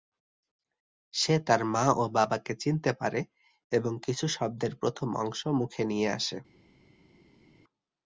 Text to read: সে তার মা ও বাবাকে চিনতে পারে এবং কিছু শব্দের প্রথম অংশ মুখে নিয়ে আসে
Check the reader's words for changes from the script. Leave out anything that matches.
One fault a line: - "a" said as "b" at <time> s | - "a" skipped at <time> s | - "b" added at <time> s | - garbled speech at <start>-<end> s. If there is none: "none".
none